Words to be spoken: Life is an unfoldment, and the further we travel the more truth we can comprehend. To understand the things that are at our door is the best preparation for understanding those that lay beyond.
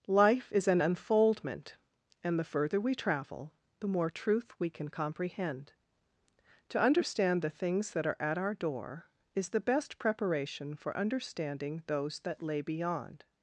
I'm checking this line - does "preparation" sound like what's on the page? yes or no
yes